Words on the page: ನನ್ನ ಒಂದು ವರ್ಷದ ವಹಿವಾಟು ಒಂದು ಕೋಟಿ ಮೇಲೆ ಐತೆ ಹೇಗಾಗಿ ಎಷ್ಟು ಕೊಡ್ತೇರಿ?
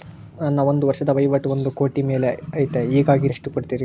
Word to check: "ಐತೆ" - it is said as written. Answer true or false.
true